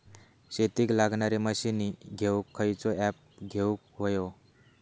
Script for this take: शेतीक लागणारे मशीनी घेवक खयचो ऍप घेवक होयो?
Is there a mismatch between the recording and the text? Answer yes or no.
no